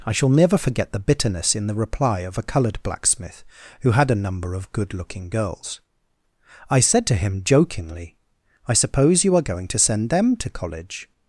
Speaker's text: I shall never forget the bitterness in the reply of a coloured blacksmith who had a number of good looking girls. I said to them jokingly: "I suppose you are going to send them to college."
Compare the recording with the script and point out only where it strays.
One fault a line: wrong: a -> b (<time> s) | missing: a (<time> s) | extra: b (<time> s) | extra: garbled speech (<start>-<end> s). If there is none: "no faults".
wrong: them -> him (7.2 s)